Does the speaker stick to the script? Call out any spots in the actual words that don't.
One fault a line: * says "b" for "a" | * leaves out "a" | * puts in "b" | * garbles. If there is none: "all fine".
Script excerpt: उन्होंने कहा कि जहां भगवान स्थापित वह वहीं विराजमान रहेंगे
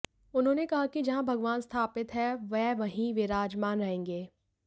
* puts in "हैं"